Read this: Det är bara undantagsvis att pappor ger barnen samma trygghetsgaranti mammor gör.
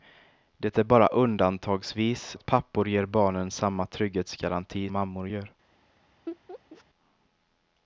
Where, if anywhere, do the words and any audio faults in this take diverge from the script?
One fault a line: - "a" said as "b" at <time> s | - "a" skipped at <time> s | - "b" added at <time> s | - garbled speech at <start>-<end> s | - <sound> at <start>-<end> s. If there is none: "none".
- laugh at 6.3-6.8 s